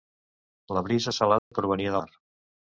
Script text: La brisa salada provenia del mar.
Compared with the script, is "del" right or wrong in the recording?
wrong